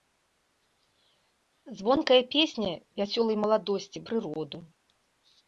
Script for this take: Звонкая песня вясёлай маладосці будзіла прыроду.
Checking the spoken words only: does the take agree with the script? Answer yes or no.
no